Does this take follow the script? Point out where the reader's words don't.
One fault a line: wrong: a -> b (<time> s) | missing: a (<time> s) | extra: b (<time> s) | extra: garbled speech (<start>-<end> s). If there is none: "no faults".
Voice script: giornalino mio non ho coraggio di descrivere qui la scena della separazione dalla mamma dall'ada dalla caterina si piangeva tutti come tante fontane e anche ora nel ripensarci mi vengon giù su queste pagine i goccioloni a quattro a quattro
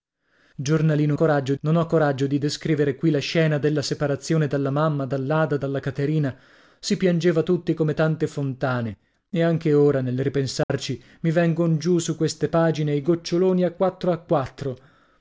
wrong: mio -> coraggio (1.1 s)